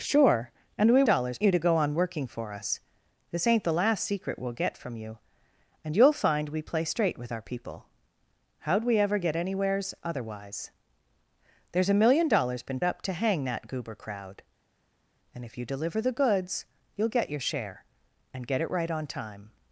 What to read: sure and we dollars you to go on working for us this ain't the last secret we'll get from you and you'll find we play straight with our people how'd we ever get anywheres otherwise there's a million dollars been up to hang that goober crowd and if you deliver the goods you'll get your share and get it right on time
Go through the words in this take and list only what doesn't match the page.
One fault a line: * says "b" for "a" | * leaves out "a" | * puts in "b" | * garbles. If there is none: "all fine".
all fine